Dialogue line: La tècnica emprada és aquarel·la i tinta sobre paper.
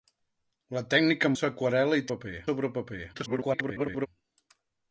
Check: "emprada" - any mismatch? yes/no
yes